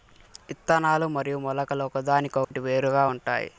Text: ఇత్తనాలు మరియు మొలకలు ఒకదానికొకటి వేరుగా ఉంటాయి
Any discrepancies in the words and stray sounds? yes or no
yes